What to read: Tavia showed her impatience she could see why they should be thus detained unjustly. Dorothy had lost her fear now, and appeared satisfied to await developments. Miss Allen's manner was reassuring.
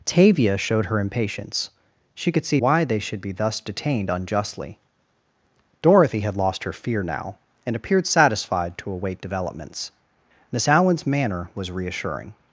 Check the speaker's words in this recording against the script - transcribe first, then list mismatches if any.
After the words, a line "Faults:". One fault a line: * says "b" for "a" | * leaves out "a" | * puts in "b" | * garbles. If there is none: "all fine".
Tavia showed her impatience she could see why they should be thus detained unjustly. Dorothy had lost her fear now, and appeared satisfied to await developments. Miss Allen's manner was reassuring.
Faults:
all fine